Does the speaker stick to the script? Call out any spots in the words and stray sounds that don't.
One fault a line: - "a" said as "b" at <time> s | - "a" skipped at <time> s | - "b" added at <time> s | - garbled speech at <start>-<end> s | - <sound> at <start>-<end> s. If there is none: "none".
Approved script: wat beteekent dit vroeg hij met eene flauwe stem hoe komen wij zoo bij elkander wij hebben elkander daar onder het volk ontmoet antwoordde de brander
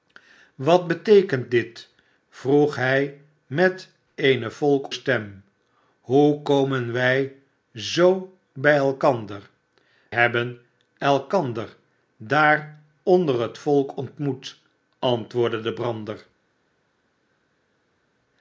- "flauwe" said as "volk" at 4.5 s
- "wij" skipped at 9.5 s